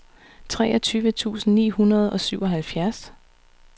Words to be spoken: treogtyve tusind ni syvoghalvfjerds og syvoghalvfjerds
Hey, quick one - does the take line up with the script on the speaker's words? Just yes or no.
no